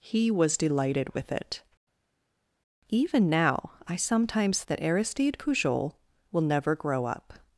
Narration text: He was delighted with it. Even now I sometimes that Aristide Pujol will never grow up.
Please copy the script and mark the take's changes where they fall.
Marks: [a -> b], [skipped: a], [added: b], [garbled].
He was delighted with it. Even now I sometimes that Aristide Pujol will never grow up.